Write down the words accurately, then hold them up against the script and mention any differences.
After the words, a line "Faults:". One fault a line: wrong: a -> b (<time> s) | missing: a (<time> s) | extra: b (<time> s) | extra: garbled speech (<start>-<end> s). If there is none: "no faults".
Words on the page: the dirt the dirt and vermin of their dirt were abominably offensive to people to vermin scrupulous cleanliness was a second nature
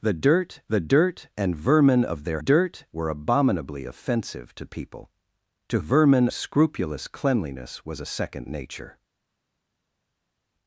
the dirt the dirt and vermin of their dirt were abominably offensive to people to vermin scrupulous cleanliness was a second nature
Faults:
no faults